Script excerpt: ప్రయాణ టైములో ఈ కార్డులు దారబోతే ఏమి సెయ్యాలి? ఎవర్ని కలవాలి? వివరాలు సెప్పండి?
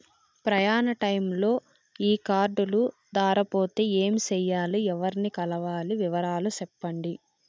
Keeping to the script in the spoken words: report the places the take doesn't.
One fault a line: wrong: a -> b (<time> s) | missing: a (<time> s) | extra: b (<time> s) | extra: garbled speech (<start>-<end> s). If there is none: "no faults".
no faults